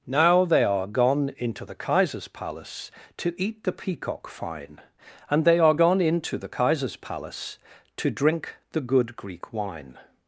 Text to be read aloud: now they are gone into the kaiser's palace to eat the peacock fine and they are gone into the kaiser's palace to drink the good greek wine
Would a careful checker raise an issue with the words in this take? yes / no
no